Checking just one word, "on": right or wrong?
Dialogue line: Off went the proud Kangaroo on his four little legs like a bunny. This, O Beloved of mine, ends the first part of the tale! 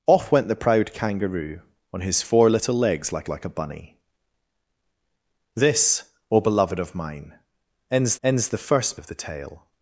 right